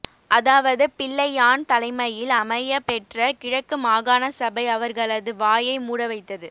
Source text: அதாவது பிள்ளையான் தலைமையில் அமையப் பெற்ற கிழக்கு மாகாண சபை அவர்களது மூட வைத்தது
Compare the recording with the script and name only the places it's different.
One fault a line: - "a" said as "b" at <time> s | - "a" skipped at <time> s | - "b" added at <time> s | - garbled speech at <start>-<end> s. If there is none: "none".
- "வாயை" added at 5.4 s